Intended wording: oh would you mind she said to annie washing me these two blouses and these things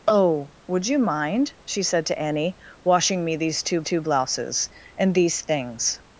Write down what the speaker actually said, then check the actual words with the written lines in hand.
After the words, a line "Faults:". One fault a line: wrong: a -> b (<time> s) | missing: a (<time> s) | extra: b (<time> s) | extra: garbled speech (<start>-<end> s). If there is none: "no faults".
oh would you mind she said to annie washing me these two two blouses and these things
Faults:
extra: two (3.8 s)